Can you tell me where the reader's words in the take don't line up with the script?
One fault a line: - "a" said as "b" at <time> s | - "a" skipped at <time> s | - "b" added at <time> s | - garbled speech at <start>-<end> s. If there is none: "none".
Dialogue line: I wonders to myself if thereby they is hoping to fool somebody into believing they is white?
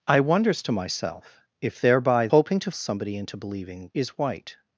- "they is" skipped at 2.3 s
- "fool" skipped at 2.7 s
- "they" skipped at 3.9 s